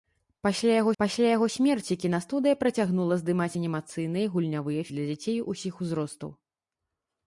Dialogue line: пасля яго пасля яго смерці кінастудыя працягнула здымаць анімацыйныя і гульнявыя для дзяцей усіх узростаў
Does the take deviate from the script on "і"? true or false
false